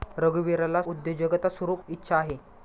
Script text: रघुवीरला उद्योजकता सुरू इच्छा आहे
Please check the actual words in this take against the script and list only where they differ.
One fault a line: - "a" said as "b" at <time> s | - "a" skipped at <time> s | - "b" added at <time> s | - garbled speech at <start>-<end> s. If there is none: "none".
none